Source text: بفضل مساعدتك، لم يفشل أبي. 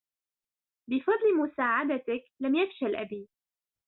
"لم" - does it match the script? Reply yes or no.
yes